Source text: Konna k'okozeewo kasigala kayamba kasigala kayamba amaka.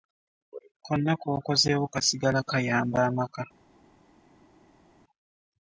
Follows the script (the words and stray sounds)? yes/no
no